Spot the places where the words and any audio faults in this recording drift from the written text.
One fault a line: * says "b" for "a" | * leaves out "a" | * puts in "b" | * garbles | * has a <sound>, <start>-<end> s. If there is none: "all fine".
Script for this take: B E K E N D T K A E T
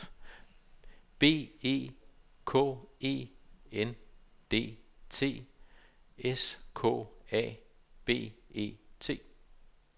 * puts in "S"
* puts in "B"